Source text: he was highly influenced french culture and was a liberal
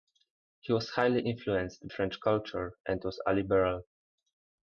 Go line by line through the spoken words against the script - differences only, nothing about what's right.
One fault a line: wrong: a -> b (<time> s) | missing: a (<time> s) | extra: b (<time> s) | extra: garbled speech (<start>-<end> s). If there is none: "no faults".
no faults